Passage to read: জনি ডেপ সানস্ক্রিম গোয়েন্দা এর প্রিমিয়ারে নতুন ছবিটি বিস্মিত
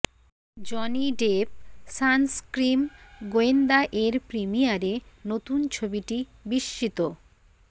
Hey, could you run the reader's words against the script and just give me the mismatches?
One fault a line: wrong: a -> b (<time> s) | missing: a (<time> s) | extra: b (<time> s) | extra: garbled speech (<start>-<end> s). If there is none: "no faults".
no faults